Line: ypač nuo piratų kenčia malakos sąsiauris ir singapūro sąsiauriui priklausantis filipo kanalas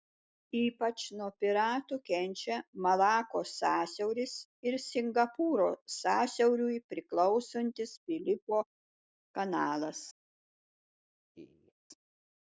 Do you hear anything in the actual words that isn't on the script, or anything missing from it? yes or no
no